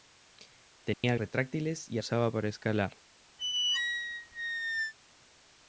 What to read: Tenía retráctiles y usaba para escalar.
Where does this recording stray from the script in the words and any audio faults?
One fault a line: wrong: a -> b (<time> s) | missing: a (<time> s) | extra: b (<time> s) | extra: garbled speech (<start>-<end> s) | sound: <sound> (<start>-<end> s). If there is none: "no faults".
sound: dropout (0.9-1.0 s)
sound: squeak (3.4-4.9 s)